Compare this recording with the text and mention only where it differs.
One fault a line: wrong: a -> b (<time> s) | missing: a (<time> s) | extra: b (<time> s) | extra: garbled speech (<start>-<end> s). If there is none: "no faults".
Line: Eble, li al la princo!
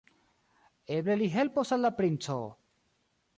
extra: helpos (1.4 s)